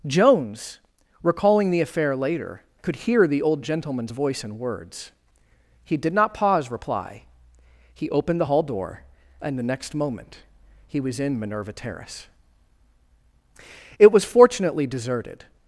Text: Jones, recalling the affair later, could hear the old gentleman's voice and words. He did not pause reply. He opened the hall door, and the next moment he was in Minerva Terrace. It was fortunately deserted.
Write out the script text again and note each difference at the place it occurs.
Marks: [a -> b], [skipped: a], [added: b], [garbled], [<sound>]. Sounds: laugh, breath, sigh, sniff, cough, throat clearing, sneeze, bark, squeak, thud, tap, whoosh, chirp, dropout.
Jones, recalling the affair later, could hear the old gentleman's voice and words. He did not pause reply. He opened the hall door, and the next moment he was in Minerva Terrace. It was fortunately deserted.